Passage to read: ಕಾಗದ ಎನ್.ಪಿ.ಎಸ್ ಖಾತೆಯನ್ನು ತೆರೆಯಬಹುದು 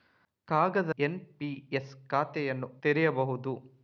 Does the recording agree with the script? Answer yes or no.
yes